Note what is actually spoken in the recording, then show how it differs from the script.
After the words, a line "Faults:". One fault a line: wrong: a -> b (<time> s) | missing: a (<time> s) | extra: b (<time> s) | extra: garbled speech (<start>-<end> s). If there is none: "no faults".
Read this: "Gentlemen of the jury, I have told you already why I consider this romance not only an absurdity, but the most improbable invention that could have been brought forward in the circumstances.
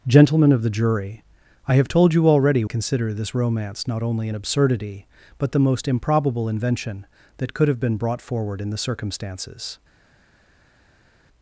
"Gentlemen of the jury, I have told you already consider this romance not only an absurdity, but the most improbable invention that could have been brought forward in the circumstances.
Faults:
missing: why I (2.6 s)